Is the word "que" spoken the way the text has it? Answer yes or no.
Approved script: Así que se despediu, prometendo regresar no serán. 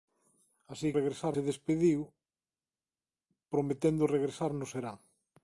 no